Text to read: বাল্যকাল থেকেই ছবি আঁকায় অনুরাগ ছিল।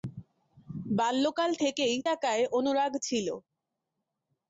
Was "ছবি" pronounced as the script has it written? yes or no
no